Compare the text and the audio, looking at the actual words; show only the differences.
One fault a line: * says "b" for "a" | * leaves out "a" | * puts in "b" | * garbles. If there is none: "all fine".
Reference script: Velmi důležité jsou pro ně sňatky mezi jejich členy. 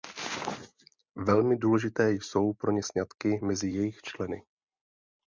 all fine